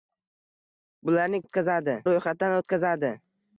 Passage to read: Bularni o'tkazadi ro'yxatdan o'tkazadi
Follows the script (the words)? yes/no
yes